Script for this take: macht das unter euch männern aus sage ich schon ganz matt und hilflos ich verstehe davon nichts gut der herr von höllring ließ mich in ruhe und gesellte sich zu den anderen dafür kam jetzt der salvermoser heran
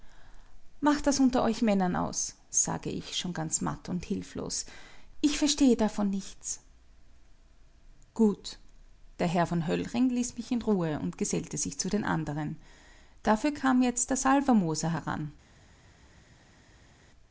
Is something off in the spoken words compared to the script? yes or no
no